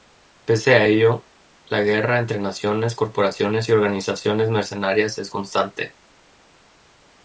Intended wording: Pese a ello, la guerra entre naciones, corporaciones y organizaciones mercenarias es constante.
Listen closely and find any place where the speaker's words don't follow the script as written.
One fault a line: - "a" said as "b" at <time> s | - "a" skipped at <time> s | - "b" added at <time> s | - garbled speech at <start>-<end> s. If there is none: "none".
none